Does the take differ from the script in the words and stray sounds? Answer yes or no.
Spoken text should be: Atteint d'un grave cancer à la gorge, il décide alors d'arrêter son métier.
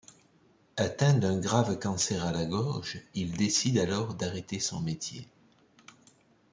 no